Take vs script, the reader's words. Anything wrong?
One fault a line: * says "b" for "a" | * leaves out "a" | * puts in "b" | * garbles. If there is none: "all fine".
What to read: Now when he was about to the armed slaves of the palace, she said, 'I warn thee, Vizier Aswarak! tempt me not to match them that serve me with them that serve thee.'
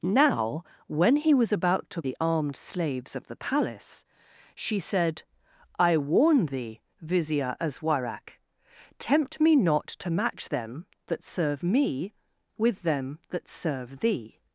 all fine